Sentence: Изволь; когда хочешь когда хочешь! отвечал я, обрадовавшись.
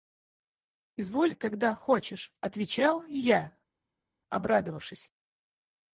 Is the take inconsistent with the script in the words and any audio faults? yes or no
yes